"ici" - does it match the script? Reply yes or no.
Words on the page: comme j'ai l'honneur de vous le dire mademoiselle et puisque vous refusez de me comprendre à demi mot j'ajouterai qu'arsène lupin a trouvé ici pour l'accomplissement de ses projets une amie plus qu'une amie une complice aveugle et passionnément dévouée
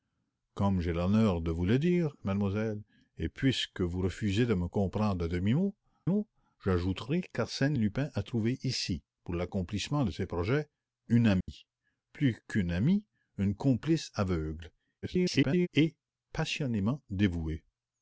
yes